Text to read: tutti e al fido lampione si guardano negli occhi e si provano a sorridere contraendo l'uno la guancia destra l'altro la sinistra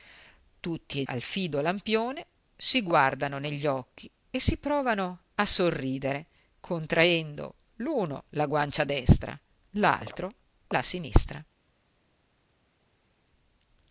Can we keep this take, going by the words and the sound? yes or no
yes